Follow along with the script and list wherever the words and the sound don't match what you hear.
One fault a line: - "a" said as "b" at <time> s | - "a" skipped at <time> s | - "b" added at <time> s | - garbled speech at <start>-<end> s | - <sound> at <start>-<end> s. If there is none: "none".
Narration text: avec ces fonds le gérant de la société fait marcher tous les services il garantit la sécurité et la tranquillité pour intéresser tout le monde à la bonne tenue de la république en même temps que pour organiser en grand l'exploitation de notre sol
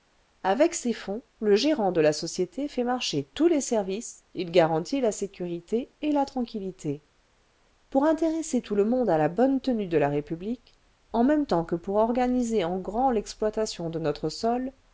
none